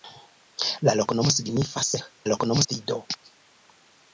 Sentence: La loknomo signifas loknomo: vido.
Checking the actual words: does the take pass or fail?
pass